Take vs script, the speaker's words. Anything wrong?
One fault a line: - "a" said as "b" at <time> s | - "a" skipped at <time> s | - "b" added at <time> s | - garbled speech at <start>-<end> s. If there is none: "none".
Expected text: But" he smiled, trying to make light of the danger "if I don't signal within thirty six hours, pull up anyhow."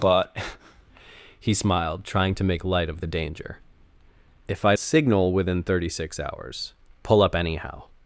- "don't" skipped at 4.7 s